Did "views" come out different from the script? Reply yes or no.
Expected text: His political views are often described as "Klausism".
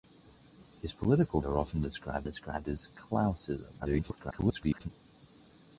yes